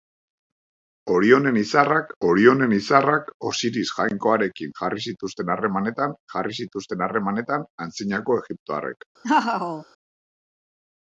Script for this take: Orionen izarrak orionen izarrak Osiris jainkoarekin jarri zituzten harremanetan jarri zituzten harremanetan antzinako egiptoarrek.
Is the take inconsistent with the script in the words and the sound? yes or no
yes